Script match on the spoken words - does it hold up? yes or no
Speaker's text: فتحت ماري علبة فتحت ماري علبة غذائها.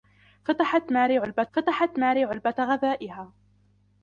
yes